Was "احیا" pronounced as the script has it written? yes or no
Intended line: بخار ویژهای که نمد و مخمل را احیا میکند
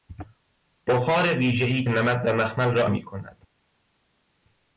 no